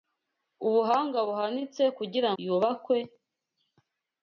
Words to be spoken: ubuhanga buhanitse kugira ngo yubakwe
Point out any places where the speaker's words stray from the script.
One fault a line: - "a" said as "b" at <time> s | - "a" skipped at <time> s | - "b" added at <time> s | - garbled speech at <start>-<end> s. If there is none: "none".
- "ngo" skipped at 2.3 s